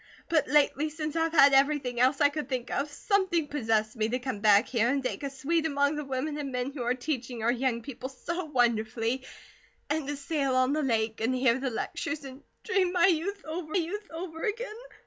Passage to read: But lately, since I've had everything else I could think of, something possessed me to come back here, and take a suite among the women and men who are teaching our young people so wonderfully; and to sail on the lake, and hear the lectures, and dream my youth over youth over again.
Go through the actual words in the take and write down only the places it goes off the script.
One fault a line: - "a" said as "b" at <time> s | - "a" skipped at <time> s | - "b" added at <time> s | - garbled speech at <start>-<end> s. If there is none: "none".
none